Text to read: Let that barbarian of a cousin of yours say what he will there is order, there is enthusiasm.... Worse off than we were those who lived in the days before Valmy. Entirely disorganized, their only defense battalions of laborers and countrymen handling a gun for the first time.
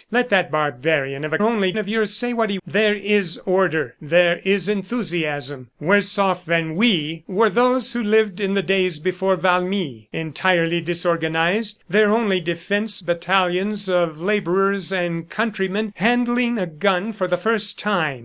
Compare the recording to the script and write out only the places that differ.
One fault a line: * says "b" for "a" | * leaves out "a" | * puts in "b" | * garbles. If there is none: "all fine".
* says "only" for "cousin"
* leaves out "will"